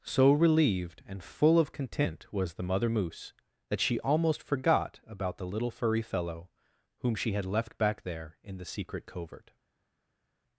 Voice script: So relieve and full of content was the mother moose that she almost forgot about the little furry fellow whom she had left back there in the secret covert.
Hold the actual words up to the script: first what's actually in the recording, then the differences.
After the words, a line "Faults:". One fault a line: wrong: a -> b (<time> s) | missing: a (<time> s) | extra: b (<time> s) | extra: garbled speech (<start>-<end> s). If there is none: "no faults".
So relieved and full of content was the mother moose that she almost forgot about the little furry fellow whom she had left back there in the secret covert.
Faults:
wrong: relieve -> relieved (0.3 s)